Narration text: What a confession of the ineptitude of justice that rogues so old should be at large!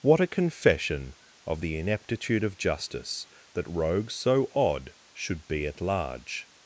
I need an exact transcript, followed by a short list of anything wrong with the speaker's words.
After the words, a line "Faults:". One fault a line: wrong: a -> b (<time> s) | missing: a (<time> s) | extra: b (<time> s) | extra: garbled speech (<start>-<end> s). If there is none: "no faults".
What a confession of the ineptitude of justice that rogues so odd should be at large!
Faults:
wrong: old -> odd (4.5 s)